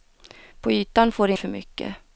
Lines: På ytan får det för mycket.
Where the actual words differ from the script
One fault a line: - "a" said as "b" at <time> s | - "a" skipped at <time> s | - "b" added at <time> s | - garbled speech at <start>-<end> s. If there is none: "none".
none